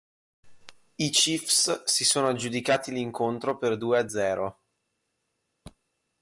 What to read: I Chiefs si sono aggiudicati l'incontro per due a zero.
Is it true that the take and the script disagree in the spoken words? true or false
false